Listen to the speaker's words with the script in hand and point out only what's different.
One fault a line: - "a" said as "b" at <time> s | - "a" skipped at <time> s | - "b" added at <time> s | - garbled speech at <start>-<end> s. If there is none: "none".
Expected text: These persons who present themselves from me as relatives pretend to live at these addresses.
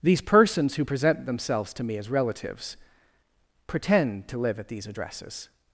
- "from" said as "to" at 1.7 s